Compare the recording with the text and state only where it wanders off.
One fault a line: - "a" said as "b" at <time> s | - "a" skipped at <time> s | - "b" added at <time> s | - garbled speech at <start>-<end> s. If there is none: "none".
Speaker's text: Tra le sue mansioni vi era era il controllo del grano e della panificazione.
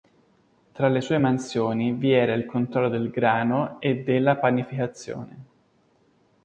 - "era" skipped at 2.3 s